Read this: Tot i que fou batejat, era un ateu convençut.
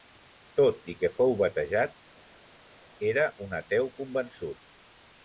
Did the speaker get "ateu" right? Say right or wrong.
right